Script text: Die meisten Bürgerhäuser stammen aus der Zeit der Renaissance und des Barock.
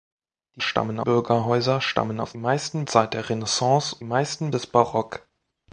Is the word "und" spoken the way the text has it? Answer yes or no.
no